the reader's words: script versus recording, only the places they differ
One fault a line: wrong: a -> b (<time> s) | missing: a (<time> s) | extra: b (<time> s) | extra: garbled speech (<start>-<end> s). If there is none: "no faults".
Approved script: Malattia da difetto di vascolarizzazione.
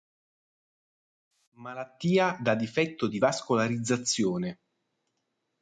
no faults